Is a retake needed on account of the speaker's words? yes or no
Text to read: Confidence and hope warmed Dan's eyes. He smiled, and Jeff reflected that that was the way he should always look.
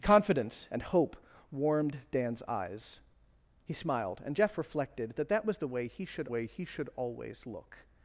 yes